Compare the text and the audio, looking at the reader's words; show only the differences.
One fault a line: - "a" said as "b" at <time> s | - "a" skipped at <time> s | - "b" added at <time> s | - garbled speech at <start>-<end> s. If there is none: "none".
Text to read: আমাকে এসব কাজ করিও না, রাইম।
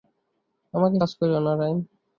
- "এসব" skipped at 0.9 s